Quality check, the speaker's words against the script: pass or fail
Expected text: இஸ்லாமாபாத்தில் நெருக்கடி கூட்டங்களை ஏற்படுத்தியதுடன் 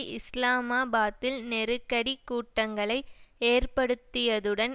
pass